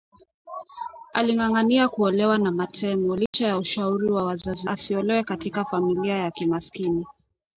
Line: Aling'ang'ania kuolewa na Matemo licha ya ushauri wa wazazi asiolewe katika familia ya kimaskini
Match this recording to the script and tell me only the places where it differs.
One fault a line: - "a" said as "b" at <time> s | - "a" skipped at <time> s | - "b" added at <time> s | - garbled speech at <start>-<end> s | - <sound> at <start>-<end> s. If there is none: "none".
- dropout at 3.3-3.3 s